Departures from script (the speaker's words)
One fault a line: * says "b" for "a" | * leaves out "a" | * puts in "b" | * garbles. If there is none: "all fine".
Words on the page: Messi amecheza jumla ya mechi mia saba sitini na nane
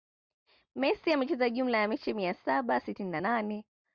all fine